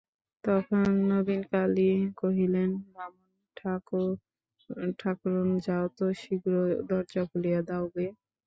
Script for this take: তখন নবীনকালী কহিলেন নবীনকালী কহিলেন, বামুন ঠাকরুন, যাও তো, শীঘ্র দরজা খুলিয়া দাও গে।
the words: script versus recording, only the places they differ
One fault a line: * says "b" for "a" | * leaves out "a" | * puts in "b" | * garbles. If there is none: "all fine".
* leaves out "নবীনকালী কহিলেন"